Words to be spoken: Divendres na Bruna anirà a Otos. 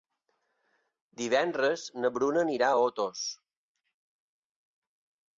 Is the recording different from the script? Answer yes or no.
no